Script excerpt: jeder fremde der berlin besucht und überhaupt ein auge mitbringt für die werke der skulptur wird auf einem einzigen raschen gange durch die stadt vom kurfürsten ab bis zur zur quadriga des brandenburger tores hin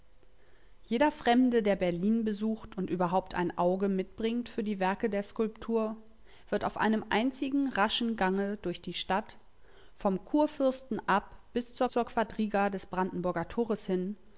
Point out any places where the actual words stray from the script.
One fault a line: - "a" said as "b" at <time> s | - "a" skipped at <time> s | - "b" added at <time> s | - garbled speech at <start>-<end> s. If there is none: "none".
none